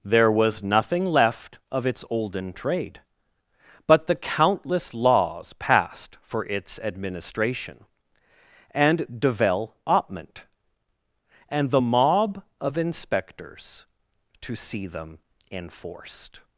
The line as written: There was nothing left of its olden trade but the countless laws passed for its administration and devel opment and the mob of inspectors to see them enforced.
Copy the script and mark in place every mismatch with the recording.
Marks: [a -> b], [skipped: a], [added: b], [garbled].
There was nothing left of its olden trade but the countless laws passed for its administration and devel opment and the mob of inspectors to see them enforced.